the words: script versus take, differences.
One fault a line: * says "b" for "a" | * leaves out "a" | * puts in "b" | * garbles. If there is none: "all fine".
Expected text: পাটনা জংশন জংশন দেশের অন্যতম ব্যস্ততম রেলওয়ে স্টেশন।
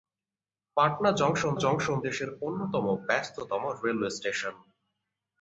all fine